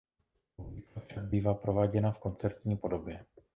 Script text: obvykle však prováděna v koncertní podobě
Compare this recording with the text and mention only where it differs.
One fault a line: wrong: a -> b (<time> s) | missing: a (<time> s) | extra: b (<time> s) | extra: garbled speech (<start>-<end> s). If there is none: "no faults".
extra: bývá (1.2 s)